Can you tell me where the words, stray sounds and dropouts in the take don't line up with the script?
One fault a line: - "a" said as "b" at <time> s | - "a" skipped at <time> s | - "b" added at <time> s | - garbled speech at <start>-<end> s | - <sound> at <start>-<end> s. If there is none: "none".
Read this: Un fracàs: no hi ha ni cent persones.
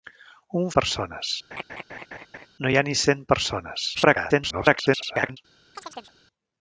- "fracàs" said as "persones" at 0.8 s
- laugh at 1.5-2.5 s
- garbled speech at 3.9-5.4 s
- chirp at 5.8-6.2 s